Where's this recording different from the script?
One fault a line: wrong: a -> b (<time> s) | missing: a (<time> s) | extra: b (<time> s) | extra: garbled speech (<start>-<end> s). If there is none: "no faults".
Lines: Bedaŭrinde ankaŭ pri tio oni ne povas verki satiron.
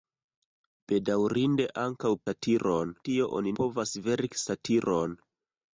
wrong: pri -> satiron (2.3 s)
missing: ne (3.6 s)